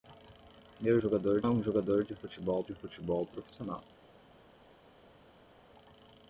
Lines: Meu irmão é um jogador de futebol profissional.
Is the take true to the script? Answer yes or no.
no